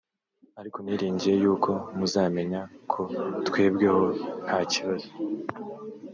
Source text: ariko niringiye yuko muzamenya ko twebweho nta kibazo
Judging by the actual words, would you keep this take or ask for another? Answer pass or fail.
pass